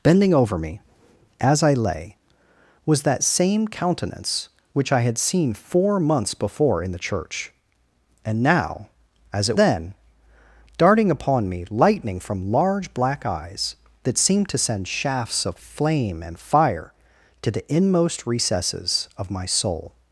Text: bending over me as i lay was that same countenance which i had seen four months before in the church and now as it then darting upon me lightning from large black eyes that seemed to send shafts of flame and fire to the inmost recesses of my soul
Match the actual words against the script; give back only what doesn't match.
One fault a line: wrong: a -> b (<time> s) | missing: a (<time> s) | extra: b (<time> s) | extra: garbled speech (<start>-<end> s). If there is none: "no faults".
no faults